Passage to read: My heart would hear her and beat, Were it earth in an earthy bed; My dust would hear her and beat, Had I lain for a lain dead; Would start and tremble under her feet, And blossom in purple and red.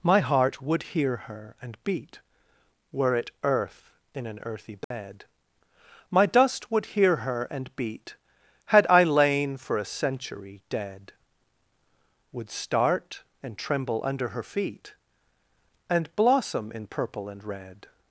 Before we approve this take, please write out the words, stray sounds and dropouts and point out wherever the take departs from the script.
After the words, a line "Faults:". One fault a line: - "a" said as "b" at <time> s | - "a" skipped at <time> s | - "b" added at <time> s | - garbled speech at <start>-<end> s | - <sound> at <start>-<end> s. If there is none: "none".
My heart would hear her and beat, Were it earth in an earthy bed; My dust would hear her and beat, Had I lain for a century dead; Would start and tremble under her feet, And blossom in purple and red.
Faults:
- dropout at 4.8-4.9 s
- "lain" said as "century" at 9.8 s